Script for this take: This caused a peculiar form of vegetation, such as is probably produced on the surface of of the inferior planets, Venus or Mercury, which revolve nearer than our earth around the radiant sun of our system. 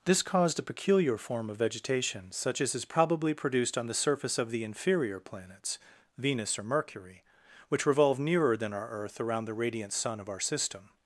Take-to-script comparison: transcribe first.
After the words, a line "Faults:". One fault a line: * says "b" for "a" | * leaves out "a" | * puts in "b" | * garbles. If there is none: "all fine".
This caused a peculiar form of vegetation, such as is probably produced on the surface of the inferior planets, Venus or Mercury, which revolve nearer than our earth around the radiant sun of our system.
Faults:
* leaves out "of"